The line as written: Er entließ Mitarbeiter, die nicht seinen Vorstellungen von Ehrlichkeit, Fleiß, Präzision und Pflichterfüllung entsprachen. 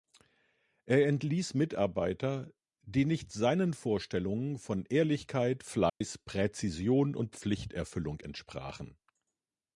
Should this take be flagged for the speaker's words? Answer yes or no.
no